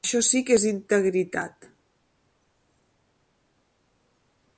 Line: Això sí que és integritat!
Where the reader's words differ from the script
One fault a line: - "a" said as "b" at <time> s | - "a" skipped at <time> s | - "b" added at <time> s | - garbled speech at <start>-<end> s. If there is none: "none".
none